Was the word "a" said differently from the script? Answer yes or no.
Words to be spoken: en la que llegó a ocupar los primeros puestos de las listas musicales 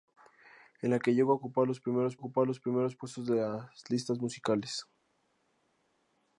no